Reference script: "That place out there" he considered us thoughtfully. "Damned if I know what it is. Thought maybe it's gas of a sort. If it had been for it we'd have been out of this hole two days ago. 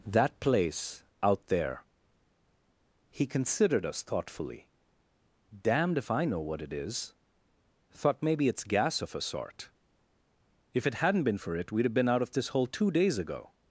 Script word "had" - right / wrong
wrong